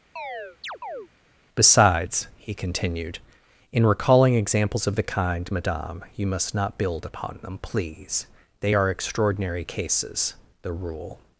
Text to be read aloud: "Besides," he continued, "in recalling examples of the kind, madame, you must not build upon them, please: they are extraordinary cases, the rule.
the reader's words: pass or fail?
pass